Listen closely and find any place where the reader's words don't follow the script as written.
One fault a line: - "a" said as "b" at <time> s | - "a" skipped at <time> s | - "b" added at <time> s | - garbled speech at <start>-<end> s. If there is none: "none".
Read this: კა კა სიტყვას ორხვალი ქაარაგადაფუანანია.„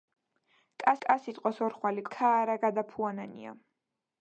none